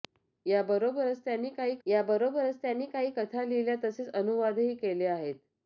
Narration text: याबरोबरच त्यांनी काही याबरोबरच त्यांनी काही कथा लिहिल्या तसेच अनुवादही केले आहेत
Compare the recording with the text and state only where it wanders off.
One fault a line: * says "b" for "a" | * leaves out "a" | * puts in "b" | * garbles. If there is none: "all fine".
all fine